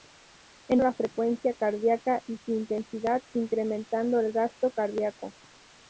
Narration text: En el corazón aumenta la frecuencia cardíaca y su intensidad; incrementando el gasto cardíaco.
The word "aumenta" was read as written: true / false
false